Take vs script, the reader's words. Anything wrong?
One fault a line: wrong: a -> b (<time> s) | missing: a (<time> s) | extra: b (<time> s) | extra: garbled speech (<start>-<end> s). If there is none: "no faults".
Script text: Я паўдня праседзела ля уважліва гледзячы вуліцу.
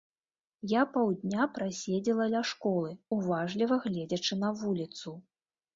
extra: школы (2.5 s)
extra: на (4.5 s)